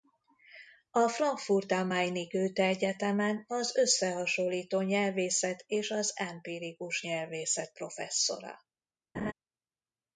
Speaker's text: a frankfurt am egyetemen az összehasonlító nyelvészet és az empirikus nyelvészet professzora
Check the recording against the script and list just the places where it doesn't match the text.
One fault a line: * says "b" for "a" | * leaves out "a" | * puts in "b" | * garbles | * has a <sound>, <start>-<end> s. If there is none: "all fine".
* puts in "main i goethe"
* has a laugh, 9.1-9.3 s